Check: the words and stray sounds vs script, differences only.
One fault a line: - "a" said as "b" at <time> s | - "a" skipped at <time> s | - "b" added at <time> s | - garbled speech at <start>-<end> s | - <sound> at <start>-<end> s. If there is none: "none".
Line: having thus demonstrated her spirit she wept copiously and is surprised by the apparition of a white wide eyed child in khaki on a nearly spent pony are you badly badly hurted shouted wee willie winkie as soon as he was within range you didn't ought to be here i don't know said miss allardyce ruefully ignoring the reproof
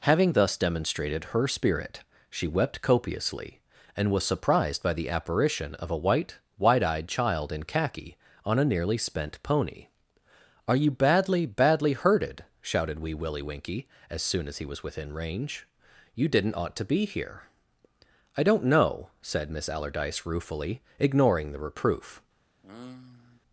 - "is" said as "was" at 4.1 s
- sigh at 22.6-23.4 s